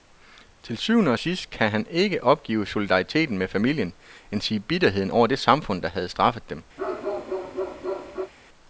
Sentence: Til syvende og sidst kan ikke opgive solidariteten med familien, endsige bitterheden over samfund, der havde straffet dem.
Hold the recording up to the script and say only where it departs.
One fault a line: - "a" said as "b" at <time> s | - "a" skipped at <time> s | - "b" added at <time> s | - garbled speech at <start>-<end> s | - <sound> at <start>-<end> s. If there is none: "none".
- "han" added at 1.7 s
- "det" added at 5.3 s
- bark at 6.8-8.3 s